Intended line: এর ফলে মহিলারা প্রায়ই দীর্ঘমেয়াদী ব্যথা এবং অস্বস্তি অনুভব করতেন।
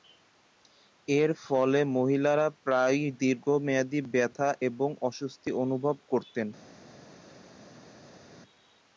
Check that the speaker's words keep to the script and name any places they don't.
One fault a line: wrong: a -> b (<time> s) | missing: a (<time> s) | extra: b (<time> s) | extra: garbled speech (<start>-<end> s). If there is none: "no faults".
no faults